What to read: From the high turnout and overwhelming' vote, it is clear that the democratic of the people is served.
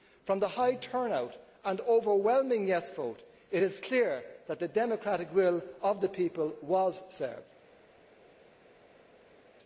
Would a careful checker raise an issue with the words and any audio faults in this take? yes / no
yes